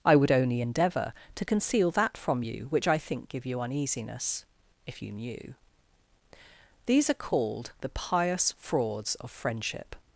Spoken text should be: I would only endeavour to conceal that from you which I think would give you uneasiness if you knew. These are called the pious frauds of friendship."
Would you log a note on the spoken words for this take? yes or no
yes